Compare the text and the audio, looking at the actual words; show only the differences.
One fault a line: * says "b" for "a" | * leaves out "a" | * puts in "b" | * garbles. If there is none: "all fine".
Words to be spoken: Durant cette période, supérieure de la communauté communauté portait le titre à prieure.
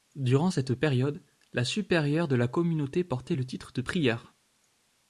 * puts in "la"
* leaves out "communauté"
* says "de" for "à"